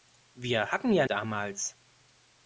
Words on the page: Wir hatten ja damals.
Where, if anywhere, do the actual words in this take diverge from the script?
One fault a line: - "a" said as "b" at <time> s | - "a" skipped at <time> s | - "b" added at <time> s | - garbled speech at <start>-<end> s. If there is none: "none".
none